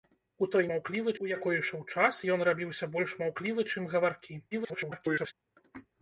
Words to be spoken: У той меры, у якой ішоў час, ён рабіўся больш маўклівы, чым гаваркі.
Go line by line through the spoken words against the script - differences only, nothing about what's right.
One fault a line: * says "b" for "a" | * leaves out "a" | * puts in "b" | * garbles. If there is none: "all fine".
* says "маўклівы" for "меры"
* garbles